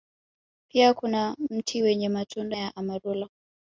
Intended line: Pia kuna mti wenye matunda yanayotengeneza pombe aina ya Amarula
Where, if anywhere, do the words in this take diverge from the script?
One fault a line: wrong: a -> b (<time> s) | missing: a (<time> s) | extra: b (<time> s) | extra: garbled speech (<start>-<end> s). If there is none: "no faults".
missing: yanayotengeneza pombe aina (2.6 s)